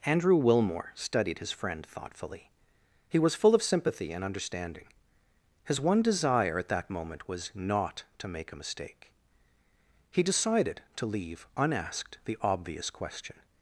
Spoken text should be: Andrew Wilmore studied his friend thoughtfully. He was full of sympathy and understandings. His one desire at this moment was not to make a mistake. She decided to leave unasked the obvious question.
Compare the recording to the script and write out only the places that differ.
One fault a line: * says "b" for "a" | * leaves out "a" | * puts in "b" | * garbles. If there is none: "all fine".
* says "understanding" for "understandings"
* says "that" for "this"
* says "He" for "She"